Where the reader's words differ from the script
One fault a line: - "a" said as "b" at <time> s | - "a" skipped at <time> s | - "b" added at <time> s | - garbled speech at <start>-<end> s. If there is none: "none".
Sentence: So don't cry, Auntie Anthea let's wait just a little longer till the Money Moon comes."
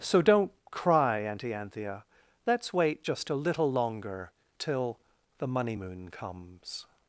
none